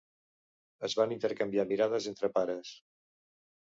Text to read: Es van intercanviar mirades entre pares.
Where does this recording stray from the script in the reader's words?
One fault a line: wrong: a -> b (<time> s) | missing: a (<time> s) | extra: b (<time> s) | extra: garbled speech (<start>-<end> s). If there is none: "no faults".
no faults